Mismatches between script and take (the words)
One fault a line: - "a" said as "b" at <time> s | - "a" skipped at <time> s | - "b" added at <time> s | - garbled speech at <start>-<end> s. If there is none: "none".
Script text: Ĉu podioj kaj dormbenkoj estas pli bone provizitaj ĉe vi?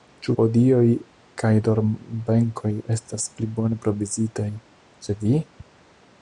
none